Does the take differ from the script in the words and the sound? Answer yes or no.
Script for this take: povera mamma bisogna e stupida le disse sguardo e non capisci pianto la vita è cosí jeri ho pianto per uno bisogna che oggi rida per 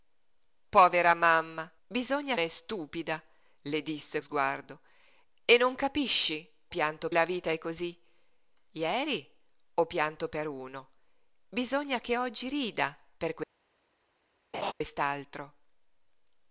yes